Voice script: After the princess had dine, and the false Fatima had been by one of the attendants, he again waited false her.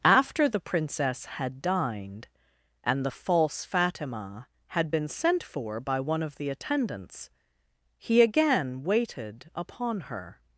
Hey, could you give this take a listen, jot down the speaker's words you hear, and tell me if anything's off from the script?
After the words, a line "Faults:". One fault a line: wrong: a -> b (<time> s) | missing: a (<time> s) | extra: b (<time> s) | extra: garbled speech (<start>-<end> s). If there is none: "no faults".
After the princess had dined, and the false Fatima had been sent for by one of the attendants, he again waited upon her.
Faults:
wrong: dine -> dined (1.6 s)
extra: sent for (5.1 s)
wrong: false -> upon (9.5 s)